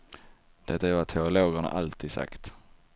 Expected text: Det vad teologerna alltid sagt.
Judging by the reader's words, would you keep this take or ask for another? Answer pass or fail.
fail